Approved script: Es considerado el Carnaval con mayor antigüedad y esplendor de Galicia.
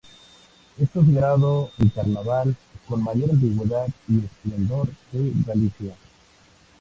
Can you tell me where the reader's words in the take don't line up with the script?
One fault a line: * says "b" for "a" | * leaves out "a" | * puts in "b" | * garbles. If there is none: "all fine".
all fine